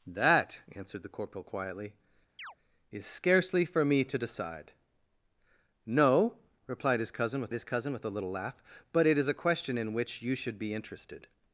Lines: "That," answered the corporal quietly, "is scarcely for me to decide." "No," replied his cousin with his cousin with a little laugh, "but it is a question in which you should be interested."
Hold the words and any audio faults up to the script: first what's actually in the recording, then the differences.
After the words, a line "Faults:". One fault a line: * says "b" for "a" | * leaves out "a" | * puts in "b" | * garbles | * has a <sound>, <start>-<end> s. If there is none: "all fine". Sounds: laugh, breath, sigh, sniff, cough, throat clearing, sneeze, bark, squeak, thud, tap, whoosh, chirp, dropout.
"That," answered the corporal quietly, "is scarcely for me to decide." "No," replied his cousin with his cousin with a little laugh, "but it is a question in which you should be interested."
Faults:
* has a chirp, 2.4-2.6 s